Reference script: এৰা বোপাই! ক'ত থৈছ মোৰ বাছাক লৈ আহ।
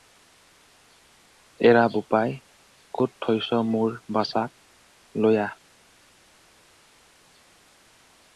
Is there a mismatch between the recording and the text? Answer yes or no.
no